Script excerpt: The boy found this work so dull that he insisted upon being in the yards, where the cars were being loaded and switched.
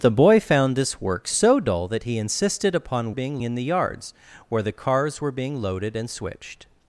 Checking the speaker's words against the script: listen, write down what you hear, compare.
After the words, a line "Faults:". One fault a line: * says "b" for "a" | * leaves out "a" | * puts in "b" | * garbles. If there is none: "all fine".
The boy found this work so dull that he insisted upon being in the yards, where the cars were being loaded and switched.
Faults:
all fine